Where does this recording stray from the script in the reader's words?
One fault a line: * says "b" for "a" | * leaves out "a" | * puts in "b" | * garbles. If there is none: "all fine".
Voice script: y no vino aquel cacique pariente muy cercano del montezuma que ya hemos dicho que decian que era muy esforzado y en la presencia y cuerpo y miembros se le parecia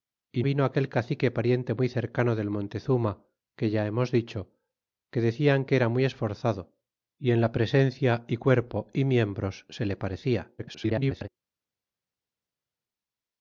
* leaves out "no"
* garbles